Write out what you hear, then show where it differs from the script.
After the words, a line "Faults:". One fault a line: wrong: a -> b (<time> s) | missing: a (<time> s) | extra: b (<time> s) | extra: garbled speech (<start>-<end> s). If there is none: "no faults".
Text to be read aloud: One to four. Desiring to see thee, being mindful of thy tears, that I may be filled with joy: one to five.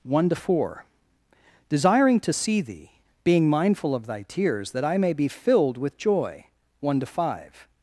One to four. Desiring to see thee, being mindful of thy tears, that I may be filled with joy: one to five.
Faults:
no faults